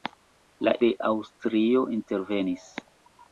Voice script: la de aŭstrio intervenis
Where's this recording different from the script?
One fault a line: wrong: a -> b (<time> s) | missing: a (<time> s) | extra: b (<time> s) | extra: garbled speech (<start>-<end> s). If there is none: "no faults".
no faults